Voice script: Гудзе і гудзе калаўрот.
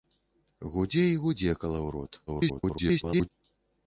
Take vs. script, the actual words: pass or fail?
fail